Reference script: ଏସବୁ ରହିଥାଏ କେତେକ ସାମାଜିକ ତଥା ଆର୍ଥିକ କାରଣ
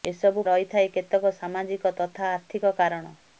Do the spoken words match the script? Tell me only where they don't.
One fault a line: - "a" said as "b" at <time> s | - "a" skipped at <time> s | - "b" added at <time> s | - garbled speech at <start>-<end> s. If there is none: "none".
none